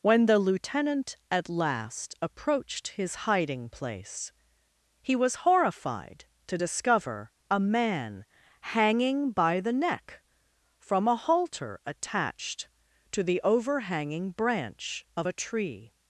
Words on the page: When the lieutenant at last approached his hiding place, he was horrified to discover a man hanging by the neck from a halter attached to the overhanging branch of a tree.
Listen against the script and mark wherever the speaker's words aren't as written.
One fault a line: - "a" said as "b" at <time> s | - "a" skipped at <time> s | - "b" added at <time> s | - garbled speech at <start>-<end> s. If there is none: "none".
none